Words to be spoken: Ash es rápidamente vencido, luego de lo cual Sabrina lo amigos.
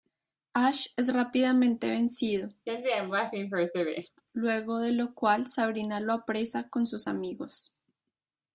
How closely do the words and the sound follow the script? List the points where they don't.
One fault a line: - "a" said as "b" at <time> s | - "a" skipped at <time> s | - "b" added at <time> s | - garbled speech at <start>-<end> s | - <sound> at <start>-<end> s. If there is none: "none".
- laugh at 2.7-4.2 s
- "apresa con sus" added at 6.1 s